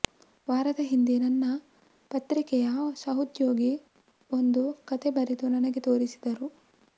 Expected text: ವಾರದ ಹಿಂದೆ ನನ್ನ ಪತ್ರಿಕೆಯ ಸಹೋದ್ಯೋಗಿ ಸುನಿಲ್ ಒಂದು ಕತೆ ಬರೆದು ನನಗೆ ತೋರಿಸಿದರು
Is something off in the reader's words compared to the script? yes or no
yes